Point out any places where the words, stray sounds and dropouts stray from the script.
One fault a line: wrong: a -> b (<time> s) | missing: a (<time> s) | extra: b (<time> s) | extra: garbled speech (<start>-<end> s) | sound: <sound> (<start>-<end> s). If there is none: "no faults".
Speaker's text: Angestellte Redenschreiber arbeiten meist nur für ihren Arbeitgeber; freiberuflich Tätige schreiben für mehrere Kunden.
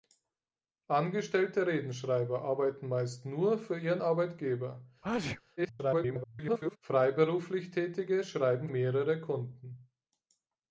sound: sneeze (5.0-5.4 s)
extra: garbled speech (5.6-6.8 s)
missing: für (8.7 s)